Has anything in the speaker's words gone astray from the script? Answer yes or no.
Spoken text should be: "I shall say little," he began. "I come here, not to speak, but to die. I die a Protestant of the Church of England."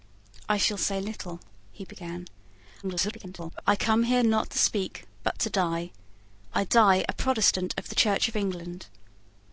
yes